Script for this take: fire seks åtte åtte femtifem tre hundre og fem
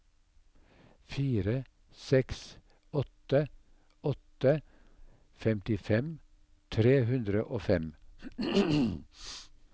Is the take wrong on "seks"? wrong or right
right